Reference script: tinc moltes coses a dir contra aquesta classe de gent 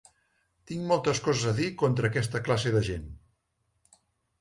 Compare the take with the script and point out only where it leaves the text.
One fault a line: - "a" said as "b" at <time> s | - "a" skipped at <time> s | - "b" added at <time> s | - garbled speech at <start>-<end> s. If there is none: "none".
none